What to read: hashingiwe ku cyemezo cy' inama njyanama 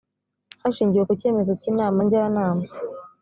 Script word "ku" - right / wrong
right